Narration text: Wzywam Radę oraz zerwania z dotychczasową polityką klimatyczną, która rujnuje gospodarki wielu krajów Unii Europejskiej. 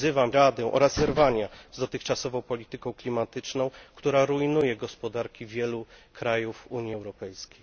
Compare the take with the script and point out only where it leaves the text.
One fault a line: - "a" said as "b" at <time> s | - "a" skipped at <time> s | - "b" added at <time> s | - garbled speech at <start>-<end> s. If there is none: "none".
none